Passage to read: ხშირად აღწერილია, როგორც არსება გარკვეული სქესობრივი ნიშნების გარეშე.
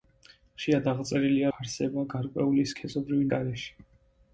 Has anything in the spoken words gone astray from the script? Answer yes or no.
yes